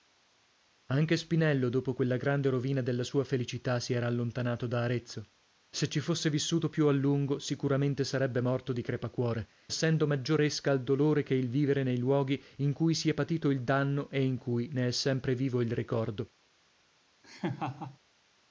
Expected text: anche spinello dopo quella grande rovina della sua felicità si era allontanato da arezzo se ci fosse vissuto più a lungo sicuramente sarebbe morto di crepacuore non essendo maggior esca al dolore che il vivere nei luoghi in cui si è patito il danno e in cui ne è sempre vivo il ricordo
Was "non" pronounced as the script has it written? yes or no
no